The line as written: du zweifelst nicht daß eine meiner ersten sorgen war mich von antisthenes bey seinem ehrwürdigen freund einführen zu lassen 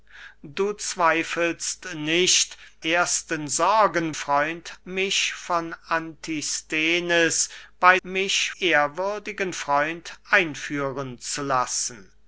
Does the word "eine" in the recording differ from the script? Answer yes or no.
yes